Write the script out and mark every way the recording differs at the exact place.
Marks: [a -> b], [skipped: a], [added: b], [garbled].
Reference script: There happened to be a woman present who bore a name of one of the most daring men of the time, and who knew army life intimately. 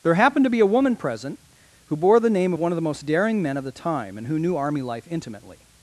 There happened to be a woman present who bore [a -> the] name of one of the most daring men of the time, and who knew army life intimately.